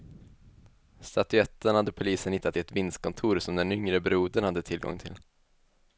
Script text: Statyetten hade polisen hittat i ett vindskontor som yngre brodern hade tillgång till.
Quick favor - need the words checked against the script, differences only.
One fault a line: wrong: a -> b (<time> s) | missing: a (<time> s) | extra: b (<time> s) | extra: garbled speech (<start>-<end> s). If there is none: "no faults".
extra: den (3.5 s)